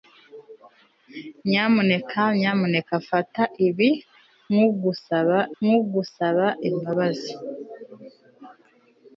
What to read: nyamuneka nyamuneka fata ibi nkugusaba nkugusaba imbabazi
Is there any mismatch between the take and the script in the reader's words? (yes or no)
no